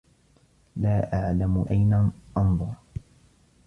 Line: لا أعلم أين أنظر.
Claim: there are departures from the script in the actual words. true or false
false